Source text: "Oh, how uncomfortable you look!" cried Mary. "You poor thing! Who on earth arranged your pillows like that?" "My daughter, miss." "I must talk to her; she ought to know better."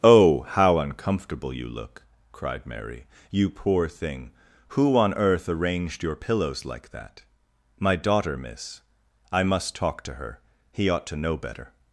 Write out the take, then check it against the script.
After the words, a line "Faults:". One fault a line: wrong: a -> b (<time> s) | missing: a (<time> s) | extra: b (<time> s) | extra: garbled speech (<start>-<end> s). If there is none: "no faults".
"Oh, how uncomfortable you look!" cried Mary. "You poor thing! Who on earth arranged your pillows like that?" "My daughter, miss." "I must talk to her; he ought to know better."
Faults:
wrong: she -> he (10.7 s)